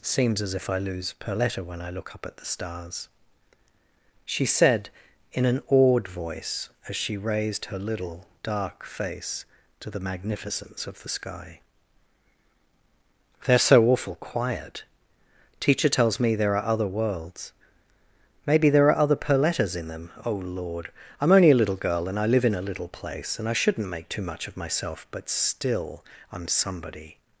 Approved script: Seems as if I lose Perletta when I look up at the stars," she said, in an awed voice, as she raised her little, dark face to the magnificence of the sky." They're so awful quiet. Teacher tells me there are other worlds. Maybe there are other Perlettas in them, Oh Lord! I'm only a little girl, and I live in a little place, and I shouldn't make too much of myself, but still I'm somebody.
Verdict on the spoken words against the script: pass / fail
pass